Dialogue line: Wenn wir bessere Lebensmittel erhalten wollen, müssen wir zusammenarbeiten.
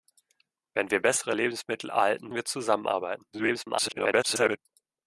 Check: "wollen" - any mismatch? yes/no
yes